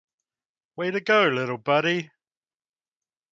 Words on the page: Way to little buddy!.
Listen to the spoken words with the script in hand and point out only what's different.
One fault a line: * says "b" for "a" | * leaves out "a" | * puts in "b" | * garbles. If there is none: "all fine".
* puts in "go"